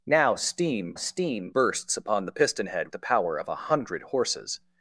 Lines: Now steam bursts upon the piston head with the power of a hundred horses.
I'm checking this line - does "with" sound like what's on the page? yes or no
no